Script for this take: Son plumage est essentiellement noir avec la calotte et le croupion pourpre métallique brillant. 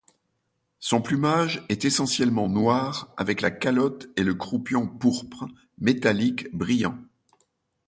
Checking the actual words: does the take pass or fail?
pass